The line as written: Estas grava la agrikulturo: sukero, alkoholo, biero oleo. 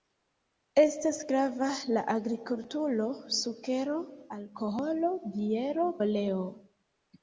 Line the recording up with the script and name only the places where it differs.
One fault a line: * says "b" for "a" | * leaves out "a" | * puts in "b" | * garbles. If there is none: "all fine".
all fine